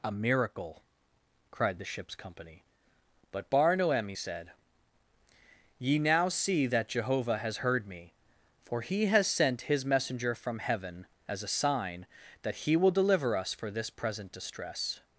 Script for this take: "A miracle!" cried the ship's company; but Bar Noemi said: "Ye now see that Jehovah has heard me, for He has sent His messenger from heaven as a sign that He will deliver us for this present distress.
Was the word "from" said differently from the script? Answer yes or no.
no